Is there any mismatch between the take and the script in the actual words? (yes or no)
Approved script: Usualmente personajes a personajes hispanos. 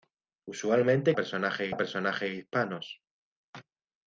no